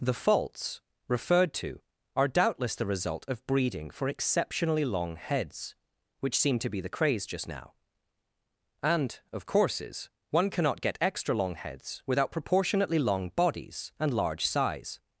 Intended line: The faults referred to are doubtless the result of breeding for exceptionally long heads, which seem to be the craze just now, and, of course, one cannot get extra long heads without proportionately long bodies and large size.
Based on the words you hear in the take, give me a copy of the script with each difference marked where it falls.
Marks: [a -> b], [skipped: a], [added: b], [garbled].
The faults referred to are doubtless the result of breeding for exceptionally long heads, which seem to be the craze just now, and, of [course, -> courses] one cannot get extra long heads without proportionately long bodies and large size.